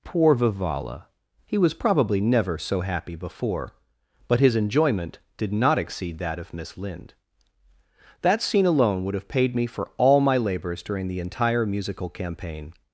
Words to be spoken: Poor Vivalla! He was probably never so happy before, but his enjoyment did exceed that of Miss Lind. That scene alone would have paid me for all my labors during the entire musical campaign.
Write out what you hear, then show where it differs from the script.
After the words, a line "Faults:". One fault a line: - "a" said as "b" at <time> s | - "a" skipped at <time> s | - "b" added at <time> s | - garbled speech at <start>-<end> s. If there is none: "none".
Poor Vivalla! He was probably never so happy before, but his enjoyment did not exceed that of Miss Lind. That scene alone would have paid me for all my labors during the entire musical campaign.
Faults:
- "not" added at 5.5 s